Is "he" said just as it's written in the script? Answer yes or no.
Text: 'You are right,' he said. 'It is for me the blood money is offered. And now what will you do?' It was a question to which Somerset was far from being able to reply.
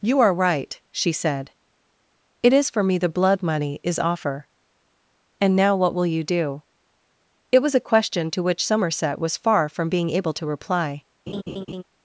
no